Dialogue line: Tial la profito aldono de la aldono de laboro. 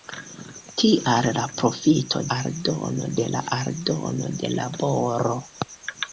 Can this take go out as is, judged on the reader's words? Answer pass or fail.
pass